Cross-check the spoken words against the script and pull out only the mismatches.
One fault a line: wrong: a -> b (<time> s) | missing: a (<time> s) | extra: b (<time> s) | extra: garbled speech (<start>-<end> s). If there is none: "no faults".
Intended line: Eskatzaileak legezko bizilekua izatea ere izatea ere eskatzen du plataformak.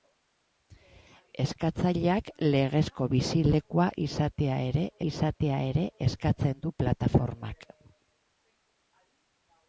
no faults